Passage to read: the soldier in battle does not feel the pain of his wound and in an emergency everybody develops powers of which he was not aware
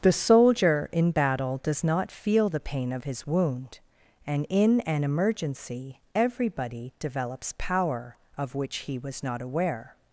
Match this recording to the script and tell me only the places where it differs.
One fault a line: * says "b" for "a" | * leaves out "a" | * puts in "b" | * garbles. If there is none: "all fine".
* says "power" for "powers"